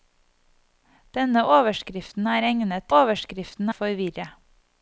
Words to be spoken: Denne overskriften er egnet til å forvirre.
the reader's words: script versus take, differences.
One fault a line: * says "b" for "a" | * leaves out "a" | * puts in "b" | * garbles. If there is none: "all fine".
* says "overskriften" for "til"